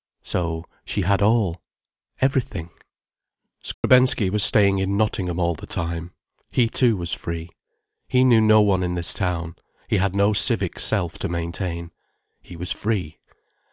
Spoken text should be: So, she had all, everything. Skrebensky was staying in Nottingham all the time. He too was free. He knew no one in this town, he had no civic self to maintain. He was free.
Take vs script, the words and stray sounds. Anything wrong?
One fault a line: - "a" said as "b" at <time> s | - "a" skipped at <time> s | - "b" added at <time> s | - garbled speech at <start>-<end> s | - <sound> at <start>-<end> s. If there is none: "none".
- dropout at 3.7-3.8 s